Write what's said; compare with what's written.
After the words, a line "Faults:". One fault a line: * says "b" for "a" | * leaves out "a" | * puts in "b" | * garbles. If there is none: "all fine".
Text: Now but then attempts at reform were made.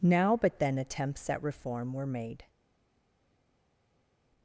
Now but then attempts at reform were made.
Faults:
all fine